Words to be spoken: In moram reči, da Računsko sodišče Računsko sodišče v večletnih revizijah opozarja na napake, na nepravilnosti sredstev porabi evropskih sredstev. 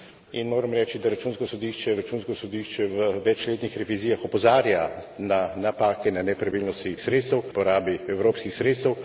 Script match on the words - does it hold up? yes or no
yes